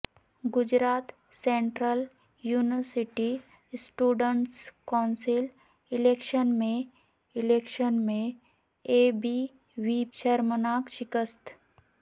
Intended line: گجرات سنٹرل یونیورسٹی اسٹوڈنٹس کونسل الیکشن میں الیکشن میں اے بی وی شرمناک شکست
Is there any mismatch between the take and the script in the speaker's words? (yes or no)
no